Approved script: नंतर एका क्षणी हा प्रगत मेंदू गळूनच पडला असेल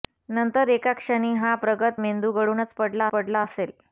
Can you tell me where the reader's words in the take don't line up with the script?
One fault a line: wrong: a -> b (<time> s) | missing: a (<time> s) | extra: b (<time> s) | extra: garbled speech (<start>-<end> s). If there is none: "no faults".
extra: पडला (3.1 s)